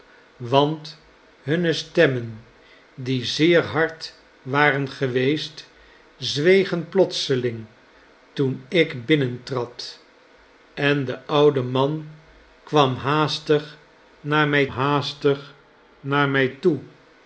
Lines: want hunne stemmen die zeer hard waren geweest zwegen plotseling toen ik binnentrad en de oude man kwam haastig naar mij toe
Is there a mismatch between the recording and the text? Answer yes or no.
yes